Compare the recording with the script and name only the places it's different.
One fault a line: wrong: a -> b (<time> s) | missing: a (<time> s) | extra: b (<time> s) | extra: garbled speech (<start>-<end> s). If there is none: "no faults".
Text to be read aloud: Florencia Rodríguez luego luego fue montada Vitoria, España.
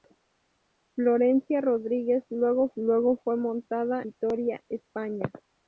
no faults